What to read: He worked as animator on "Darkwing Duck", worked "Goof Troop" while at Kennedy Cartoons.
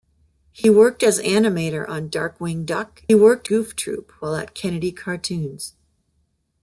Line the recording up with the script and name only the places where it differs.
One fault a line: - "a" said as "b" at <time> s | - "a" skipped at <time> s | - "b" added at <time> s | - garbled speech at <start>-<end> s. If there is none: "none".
none